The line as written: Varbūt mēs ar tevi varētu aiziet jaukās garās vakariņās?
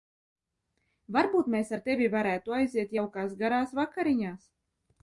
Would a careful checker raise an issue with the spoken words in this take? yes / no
no